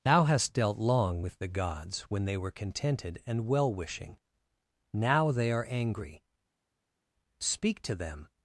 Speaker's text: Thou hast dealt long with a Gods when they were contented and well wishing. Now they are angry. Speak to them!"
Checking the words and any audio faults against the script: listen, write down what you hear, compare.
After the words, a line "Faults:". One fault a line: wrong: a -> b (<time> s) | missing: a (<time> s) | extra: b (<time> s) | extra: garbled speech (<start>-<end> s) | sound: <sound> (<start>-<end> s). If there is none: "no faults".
Thou hast dealt long with the Gods when they were contented and well wishing. Now they are angry. Speak to them!"
Faults:
wrong: a -> the (1.4 s)